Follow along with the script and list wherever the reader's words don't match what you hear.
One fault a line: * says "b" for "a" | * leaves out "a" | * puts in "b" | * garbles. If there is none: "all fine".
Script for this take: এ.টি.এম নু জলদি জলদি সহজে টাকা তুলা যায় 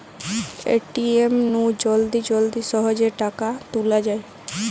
all fine